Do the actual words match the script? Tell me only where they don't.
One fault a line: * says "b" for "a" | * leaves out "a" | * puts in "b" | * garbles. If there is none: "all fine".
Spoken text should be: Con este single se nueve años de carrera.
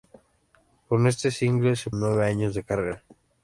all fine